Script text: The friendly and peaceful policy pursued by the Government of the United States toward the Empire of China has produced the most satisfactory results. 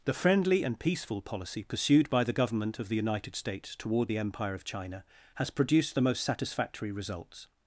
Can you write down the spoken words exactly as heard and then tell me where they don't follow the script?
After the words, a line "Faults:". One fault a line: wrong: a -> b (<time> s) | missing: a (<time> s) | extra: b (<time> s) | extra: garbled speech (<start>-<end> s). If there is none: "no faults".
The friendly and peaceful policy pursued by the Government of the United States toward the Empire of China has produced the most satisfactory results.
Faults:
no faults